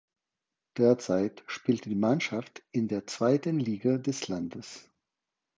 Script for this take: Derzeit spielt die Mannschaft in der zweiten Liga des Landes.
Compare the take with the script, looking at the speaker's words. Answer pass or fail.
pass